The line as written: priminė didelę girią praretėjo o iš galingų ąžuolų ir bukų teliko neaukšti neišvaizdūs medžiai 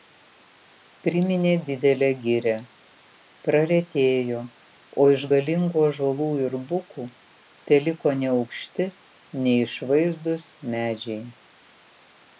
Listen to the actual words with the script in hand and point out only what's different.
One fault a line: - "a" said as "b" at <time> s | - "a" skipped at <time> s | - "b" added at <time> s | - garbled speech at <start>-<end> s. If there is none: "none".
none